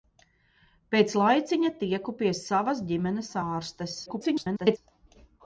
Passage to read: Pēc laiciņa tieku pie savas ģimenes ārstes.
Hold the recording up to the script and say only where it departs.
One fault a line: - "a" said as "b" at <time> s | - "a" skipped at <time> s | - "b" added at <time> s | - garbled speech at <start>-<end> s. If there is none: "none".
- garbled speech at 4.1-4.8 s